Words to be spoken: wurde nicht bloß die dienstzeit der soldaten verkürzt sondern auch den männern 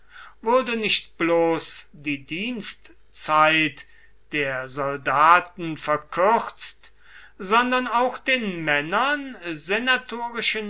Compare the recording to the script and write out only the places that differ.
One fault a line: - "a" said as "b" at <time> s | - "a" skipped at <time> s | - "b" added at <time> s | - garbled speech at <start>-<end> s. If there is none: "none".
none